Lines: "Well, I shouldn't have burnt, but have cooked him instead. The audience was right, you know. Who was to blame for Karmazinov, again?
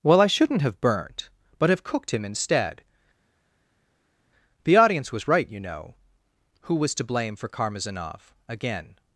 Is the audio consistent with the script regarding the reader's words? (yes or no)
yes